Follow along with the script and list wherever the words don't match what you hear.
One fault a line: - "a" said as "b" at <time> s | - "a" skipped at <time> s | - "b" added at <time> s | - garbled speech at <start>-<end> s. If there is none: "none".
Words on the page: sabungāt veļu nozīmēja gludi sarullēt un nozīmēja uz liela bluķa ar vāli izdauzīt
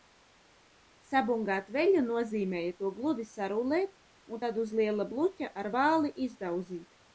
- "to" added at 2.8 s
- "nozīmēja" said as "tad" at 4.4 s